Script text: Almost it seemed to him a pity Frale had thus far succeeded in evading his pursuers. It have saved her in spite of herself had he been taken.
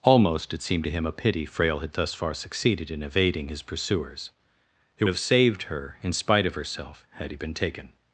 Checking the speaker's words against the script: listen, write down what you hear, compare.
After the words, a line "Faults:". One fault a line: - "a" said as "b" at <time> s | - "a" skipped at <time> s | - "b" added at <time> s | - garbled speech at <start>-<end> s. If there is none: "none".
Almost it seemed to him a pity Frale had thus far succeeded in evading his pursuers. It have saved her in spite of herself had he been taken.
Faults:
none